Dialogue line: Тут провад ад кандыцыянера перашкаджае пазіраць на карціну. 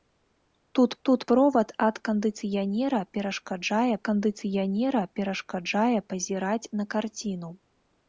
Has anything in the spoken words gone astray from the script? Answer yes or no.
yes